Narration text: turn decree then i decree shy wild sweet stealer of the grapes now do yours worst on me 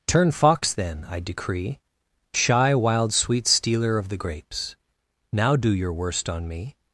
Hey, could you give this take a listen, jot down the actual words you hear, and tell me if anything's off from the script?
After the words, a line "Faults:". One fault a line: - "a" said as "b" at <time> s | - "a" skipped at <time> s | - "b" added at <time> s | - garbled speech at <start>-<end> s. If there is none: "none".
turn fox then i decree shy wild sweet stealer of the grapes now do your worst on me
Faults:
- "decree" said as "fox" at 0.3 s
- "yours" said as "your" at 5.7 s